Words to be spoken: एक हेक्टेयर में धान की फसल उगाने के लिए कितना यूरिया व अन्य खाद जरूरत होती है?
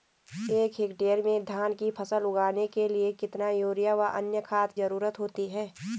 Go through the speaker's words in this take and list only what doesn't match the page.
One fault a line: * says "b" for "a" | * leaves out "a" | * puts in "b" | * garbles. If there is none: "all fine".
all fine